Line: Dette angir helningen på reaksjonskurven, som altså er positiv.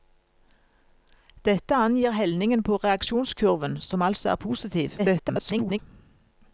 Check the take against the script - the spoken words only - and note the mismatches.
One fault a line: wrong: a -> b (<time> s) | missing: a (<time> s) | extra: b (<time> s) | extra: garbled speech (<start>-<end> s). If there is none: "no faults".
extra: garbled speech (5.0-5.8 s)